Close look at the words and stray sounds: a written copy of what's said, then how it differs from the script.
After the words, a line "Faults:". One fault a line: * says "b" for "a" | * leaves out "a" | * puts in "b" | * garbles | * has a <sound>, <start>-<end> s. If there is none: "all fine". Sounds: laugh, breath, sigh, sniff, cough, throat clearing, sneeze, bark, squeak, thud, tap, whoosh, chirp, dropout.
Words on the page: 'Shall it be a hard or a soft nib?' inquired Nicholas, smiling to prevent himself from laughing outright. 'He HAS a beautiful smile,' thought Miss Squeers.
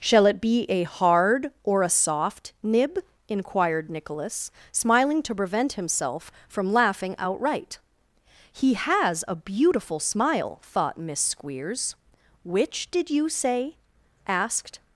'Shall it be a hard or a soft nib?' inquired Nicholas, smiling to prevent himself from laughing outright. 'He HAS a beautiful smile,' thought Miss Squeers. 'Which did you say?' asked
Faults:
* puts in "Which did you say asked"